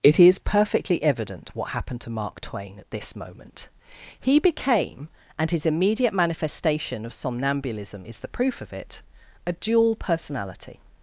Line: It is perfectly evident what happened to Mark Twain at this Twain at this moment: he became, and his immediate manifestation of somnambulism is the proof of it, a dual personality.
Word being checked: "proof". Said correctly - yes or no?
yes